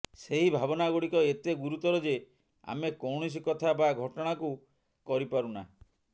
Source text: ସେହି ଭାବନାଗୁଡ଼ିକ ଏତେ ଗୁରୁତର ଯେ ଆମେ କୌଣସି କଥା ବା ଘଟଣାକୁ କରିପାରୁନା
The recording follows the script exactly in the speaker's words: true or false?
true